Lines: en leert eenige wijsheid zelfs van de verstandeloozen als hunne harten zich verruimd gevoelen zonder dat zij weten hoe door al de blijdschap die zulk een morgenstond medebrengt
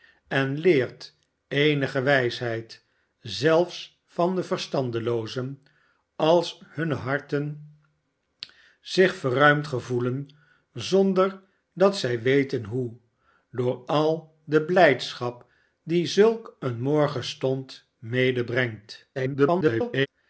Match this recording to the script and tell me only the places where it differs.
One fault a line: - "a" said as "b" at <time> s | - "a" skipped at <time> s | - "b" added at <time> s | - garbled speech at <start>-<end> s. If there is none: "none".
- garbled speech at 19.2-20.1 s